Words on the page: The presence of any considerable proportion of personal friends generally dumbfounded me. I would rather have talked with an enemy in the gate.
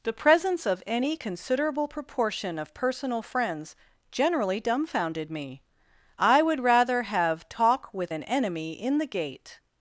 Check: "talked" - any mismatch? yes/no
yes